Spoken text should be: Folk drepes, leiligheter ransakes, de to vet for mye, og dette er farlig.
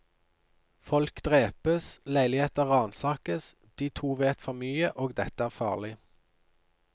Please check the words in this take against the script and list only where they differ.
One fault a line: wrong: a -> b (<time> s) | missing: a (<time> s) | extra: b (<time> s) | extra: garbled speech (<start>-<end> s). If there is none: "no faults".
no faults